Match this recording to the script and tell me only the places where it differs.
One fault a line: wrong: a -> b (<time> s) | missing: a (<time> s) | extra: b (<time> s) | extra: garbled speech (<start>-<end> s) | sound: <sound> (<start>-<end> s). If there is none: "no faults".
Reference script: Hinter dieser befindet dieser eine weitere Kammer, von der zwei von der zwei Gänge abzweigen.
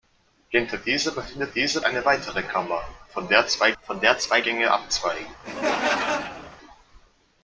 sound: laugh (5.4-6.6 s)